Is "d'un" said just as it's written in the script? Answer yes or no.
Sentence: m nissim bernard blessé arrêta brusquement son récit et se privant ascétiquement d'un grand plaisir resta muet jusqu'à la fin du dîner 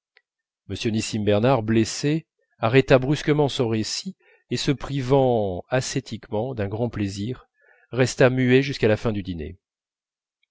yes